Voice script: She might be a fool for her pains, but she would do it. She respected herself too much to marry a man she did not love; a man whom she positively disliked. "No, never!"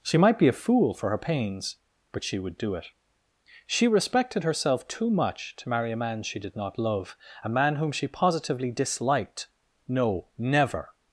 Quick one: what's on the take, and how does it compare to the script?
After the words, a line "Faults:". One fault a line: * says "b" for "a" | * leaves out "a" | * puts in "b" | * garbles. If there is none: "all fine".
She might be a fool for her pains, but she would do it. She respected herself too much to marry a man she did not love; a man whom she positively disliked. "No, never!"
Faults:
all fine